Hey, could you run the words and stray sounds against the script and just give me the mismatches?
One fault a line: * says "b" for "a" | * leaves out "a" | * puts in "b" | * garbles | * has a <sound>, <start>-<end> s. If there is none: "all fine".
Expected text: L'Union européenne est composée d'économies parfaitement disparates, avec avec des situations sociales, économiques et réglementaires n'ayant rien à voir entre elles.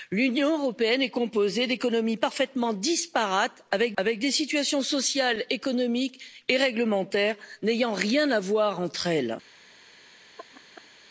* has a laugh, 10.4-10.9 s